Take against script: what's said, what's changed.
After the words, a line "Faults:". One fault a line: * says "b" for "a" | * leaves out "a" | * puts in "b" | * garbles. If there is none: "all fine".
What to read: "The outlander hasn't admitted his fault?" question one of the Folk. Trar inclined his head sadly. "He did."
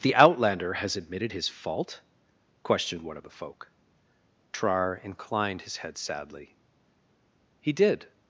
"The outlander has admitted his fault?" questioned one of the Folk. Trar inclined his head sadly. "He did."
Faults:
* says "has" for "hasn't"
* says "questioned" for "question"